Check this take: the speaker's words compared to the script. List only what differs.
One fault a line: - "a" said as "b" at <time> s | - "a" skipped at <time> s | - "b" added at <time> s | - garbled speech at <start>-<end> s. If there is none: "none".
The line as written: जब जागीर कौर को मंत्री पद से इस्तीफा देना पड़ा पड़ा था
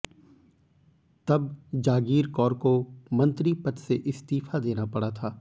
- "जब" said as "तब" at 1.3 s
- "पड़ा" skipped at 5.1 s